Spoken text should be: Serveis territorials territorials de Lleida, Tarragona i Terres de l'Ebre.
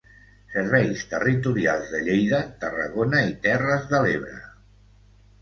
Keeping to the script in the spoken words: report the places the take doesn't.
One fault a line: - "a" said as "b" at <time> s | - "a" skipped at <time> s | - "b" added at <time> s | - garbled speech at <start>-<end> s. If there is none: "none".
- "territorials" skipped at 1.9 s